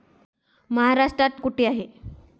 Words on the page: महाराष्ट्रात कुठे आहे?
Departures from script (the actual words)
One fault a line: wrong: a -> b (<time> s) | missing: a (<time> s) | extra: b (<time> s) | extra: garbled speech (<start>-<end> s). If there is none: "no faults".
no faults